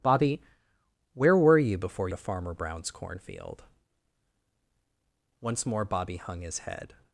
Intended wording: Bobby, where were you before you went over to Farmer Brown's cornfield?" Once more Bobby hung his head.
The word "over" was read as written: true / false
false